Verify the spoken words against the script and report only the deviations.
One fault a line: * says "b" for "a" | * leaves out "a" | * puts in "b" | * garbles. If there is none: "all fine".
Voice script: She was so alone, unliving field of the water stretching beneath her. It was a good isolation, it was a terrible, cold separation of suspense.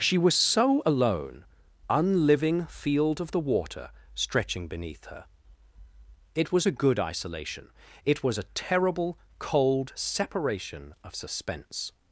all fine